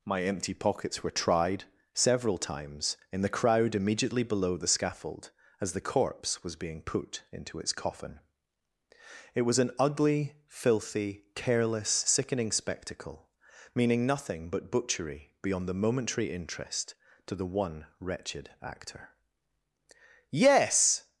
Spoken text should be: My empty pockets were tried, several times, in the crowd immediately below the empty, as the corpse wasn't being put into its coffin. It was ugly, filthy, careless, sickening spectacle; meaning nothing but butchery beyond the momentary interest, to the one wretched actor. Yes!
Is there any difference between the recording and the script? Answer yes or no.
yes